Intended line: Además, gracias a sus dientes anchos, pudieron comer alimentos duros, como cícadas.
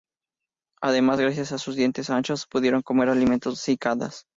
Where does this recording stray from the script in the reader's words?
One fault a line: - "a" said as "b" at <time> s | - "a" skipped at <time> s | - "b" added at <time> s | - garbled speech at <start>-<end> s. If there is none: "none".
- "duros como" skipped at 3.5 s